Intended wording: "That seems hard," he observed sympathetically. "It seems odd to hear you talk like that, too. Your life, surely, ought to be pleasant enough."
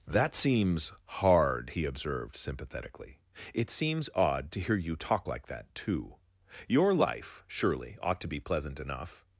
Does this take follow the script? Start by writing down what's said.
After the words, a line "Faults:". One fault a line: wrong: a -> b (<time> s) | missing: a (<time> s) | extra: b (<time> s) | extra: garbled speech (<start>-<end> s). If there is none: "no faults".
"That seems hard," he observed sympathetically. "It seems odd to hear you talk like that, too. Your life, surely, ought to be pleasant enough."
Faults:
no faults